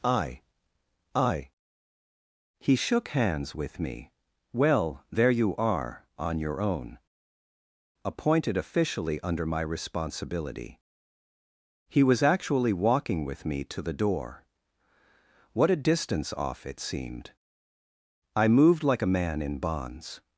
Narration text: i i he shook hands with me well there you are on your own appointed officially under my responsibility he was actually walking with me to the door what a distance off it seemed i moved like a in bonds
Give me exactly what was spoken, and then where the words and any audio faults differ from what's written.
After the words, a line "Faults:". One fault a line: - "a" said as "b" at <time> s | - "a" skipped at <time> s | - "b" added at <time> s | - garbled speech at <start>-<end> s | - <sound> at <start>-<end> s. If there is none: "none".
i i he shook hands with me well there you are on your own appointed officially under my responsibility he was actually walking with me to the door what a distance off it seemed i moved like a man in bonds
Faults:
- "man" added at 19.1 s